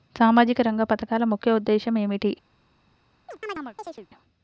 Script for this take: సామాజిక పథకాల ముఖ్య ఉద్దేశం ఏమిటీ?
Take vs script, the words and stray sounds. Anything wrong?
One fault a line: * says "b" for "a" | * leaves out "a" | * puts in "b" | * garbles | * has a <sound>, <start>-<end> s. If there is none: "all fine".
* puts in "రంగ"
* has a chirp, 3.3-4.1 s